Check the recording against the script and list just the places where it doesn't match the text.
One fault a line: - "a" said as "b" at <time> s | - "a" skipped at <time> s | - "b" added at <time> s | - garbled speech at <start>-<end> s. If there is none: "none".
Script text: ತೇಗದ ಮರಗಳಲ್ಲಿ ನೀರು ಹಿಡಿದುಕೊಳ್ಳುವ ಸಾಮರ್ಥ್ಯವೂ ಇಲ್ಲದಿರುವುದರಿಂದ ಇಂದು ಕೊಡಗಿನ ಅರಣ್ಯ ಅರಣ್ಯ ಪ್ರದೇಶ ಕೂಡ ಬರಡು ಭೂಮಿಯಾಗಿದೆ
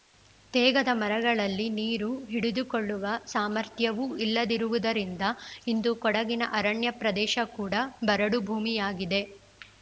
- "ಅರಣ್ಯ" skipped at 6.9 s